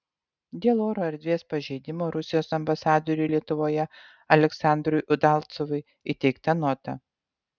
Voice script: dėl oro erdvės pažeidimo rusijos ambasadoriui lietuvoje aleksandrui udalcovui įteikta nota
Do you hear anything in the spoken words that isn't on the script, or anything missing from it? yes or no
no